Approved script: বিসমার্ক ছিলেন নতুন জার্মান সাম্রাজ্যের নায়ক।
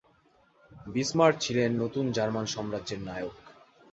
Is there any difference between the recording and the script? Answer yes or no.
no